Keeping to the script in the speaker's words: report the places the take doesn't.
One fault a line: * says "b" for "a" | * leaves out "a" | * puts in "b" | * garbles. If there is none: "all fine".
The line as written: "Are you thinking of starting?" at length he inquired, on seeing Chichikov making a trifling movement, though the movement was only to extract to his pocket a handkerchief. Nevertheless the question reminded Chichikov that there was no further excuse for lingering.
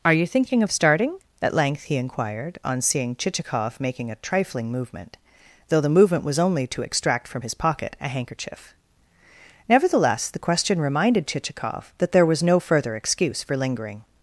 * says "from" for "to"